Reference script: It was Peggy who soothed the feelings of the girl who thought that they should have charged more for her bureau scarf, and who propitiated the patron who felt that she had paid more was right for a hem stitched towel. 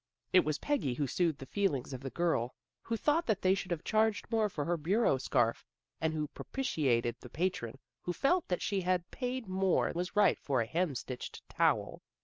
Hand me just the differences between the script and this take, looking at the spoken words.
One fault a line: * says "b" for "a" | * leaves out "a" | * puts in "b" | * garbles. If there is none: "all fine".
all fine